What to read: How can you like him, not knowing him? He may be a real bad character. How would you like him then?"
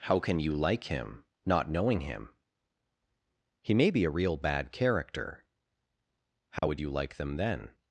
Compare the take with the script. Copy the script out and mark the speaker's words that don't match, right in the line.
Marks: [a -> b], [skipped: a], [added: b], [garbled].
How can you like him, not knowing him? He may be a real bad character. How would you like [him -> them] then?"